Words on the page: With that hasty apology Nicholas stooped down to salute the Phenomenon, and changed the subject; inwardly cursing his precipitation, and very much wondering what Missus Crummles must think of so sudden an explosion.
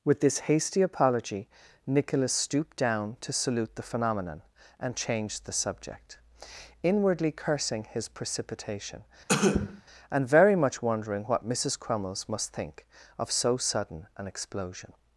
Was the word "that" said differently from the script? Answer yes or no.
yes